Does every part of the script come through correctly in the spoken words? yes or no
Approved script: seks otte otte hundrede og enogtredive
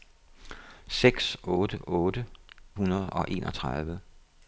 yes